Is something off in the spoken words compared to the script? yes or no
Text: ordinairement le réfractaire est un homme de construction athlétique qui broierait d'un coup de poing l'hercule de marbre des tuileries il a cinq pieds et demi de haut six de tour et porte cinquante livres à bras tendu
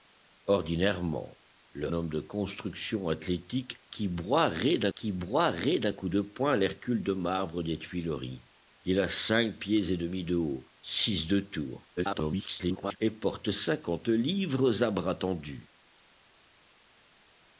yes